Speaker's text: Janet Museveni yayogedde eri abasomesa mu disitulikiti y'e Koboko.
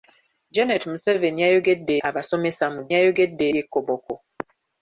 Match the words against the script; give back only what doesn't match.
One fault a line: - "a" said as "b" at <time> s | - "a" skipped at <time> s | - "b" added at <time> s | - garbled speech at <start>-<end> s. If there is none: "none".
- "eri" skipped at 1.9 s
- "disitulikiti" said as "yayogedde" at 2.9 s